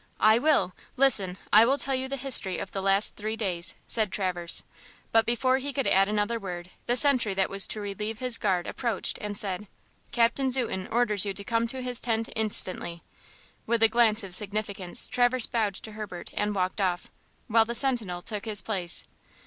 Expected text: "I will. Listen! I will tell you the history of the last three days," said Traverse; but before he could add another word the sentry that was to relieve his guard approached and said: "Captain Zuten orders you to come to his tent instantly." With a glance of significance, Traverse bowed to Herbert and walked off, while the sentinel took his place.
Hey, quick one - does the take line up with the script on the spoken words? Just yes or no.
yes